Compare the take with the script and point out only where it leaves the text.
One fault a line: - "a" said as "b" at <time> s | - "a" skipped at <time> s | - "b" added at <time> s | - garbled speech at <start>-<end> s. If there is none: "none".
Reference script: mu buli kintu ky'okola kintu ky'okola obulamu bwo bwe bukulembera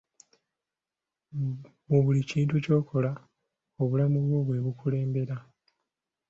- "kintu ky'okola" skipped at 3.1 s